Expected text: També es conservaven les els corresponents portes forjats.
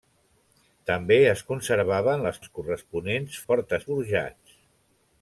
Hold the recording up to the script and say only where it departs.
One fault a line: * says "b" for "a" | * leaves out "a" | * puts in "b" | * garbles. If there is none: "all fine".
all fine